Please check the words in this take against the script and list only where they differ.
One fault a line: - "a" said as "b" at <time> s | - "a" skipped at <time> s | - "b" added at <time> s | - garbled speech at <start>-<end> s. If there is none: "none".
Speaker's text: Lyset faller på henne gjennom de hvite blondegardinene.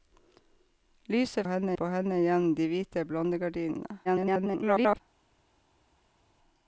- "faller" said as "henne" at 1.5 s
- garbled speech at 4.0-5.0 s